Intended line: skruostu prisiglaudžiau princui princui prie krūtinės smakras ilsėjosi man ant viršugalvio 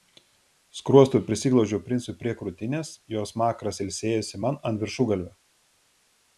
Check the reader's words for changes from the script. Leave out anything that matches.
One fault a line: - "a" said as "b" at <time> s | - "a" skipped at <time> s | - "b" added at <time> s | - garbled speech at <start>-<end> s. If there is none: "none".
- "princui" skipped at 2.1 s
- "jo" added at 3.2 s